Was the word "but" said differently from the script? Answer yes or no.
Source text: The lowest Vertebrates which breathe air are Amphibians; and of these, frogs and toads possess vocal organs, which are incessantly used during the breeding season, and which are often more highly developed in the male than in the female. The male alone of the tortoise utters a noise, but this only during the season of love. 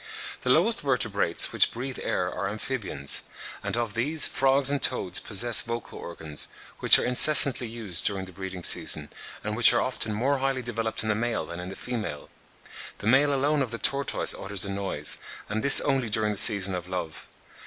yes